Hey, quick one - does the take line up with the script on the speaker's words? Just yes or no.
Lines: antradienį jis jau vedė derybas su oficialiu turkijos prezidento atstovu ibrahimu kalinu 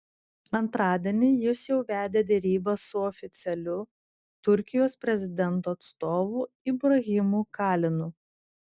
yes